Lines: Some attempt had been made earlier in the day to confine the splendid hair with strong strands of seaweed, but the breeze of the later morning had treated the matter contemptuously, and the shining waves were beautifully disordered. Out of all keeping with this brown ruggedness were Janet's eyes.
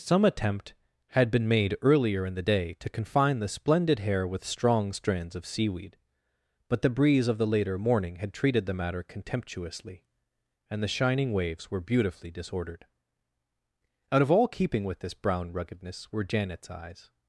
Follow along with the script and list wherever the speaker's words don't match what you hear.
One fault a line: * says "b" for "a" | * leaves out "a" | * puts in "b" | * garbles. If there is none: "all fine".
all fine